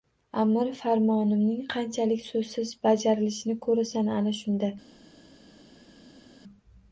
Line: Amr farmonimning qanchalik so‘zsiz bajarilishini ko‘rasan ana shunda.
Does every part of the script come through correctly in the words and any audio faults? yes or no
yes